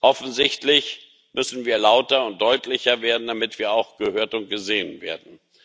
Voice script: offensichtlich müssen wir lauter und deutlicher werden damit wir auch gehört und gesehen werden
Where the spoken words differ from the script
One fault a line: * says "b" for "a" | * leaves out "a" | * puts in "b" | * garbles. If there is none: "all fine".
all fine